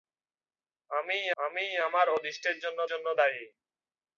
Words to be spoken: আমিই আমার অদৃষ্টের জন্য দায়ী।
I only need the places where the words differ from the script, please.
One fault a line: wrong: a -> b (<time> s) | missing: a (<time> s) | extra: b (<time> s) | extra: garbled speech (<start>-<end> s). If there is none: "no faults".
extra: আমিই (1.4 s)
extra: জন্য (2.9 s)